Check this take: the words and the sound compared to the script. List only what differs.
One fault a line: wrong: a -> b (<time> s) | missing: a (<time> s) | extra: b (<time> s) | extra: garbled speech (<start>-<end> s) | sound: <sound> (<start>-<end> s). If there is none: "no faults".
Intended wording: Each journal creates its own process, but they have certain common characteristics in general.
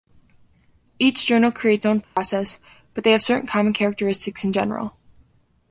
missing: its (1.9 s)
sound: dropout (2.0-2.2 s)